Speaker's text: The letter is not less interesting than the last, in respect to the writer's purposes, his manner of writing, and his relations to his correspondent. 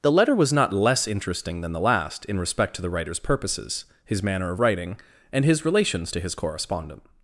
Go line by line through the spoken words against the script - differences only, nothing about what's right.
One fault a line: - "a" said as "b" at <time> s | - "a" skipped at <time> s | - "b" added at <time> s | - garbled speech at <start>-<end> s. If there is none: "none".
- "is" said as "was" at 0.3 s